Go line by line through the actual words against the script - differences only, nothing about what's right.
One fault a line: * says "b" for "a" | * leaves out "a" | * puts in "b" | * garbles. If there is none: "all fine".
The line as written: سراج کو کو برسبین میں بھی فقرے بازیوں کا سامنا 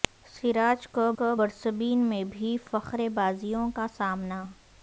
all fine